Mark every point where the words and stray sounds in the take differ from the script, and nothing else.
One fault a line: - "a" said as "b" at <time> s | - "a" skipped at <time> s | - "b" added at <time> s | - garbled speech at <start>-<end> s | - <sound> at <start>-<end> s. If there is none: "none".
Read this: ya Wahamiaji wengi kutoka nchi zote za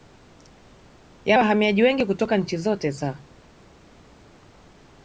none